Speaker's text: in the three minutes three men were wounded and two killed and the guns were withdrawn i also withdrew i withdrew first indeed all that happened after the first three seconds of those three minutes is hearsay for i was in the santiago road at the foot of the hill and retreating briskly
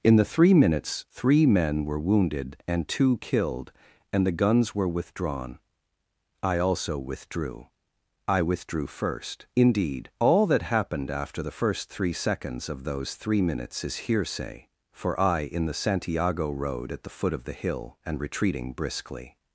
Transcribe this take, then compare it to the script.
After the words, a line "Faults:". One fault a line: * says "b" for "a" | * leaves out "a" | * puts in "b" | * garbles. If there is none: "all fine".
in the three minutes three men were wounded and two killed and the guns were withdrawn i also withdrew i withdrew first indeed all that happened after the first three seconds of those three minutes is hearsay for i in the santiago road at the foot of the hill and retreating briskly
Faults:
* leaves out "was"